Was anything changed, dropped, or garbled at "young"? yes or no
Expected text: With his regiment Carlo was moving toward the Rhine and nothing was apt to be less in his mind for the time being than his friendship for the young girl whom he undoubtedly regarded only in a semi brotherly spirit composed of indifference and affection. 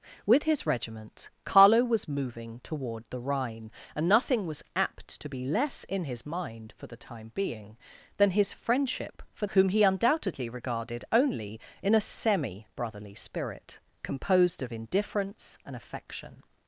yes